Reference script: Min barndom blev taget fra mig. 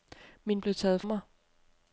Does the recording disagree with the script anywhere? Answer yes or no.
yes